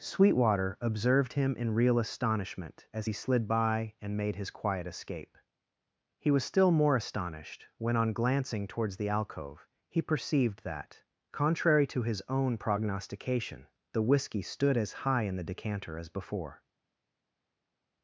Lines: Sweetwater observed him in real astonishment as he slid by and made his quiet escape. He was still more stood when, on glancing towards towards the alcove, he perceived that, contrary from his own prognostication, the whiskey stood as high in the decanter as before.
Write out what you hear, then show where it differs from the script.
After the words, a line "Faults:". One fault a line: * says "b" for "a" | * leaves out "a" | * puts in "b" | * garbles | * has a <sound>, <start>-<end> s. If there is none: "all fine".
Sweetwater observed him in real astonishment as he slid by and made his quiet escape. He was still more astonished when, on glancing towards the alcove, he perceived that, contrary to his own prognostication, the whiskey stood as high in the decanter as before.
Faults:
* says "astonished" for "stood"
* leaves out "towards"
* says "to" for "from"